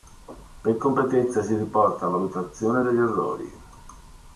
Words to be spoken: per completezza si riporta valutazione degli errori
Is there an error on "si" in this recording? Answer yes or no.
no